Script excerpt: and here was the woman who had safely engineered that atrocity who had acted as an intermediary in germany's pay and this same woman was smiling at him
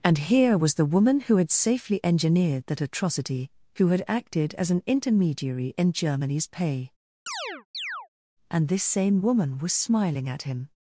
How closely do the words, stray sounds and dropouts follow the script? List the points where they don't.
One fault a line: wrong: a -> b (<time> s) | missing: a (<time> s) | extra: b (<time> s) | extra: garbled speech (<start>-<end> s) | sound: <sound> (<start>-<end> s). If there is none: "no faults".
sound: chirp (7.3-8.1 s)